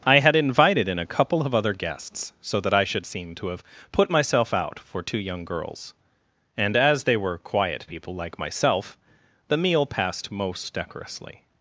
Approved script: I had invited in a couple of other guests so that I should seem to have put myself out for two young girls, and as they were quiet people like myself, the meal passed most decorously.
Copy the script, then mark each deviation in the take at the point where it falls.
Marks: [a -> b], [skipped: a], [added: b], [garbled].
I had invited in a couple of other guests so that I should seem to have put myself out for two young girls, and as they were quiet people like myself, the meal passed most decorously.